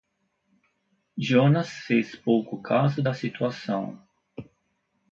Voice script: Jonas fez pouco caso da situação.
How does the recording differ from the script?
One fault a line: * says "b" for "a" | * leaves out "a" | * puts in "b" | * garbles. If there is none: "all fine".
all fine